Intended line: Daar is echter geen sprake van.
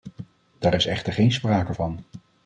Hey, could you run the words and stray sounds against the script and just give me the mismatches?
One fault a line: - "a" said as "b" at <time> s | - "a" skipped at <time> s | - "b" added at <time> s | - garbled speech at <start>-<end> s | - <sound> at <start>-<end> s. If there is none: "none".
none